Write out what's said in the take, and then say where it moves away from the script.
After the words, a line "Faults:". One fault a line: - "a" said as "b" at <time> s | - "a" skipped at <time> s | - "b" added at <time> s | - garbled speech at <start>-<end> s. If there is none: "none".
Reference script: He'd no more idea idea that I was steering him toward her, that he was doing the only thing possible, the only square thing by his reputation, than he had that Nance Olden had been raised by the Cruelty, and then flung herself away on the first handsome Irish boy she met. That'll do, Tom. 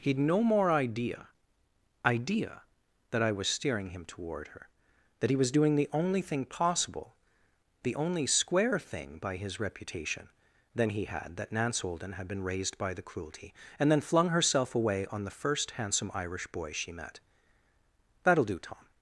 He'd no more idea idea that I was steering him toward her, that he was doing the only thing possible, the only square thing by his reputation, than he had that Nance Olden had been raised by the Cruelty, and then flung herself away on the first handsome Irish boy she met. That'll do, Tom.
Faults:
none